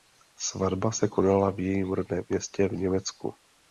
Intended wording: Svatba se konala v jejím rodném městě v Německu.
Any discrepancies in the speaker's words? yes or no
no